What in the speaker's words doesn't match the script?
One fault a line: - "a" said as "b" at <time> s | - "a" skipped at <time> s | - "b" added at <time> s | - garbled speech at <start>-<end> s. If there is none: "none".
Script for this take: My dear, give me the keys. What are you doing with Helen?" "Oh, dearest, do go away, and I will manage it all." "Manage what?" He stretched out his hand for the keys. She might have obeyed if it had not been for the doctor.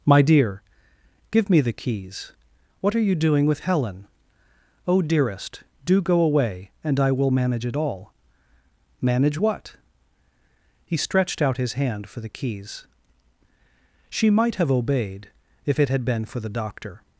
- "not" skipped at 16.0 s